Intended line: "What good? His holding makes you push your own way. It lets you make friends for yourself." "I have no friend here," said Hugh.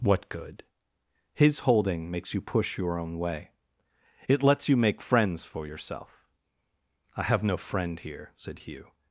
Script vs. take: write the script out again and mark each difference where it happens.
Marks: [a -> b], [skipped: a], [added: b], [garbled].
"What good? His holding makes you push your own way. It lets you make friends for yourself." "I have no friend here," said Hugh.